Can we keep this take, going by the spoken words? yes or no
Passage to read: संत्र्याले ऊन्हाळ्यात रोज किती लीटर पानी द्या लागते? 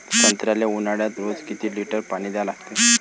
yes